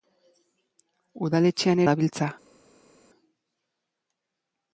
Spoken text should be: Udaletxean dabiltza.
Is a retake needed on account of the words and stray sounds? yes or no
no